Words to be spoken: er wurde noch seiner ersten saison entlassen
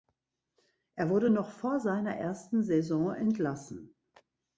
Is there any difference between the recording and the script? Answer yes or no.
yes